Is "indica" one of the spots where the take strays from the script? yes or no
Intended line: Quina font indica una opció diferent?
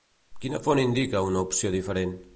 no